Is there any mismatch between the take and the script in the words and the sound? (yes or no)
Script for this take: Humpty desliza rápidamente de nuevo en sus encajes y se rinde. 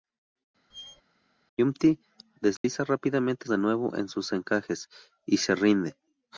yes